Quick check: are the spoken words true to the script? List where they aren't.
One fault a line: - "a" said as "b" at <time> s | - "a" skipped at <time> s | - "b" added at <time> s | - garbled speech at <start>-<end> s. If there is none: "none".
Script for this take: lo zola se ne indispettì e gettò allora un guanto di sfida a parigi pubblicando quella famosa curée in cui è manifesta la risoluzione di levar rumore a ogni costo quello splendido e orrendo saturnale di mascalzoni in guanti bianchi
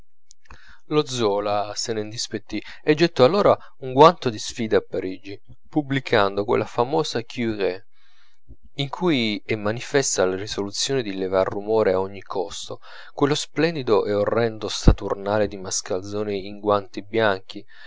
none